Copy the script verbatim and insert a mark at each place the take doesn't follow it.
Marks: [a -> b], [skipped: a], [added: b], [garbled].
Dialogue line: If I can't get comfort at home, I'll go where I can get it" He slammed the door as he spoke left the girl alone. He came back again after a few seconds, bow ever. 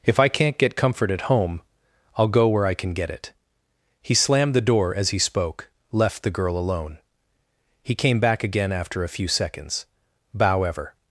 If I can't get comfort at home, I'll go where I can get it" He slammed the door as he spoke left the girl alone. He came back again after a few seconds, bow ever.